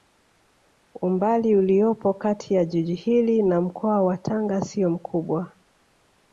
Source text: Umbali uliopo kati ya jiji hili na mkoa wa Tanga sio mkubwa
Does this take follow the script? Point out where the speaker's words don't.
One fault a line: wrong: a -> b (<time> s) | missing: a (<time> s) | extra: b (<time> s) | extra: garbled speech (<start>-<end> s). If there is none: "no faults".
no faults